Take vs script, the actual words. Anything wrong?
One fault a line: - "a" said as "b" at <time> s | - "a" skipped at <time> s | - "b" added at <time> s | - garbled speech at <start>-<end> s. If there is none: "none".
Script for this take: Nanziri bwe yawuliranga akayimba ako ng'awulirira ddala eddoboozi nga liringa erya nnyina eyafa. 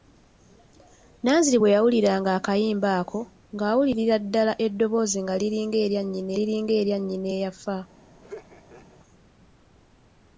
- "liringa erya nnyina" added at 6.4 s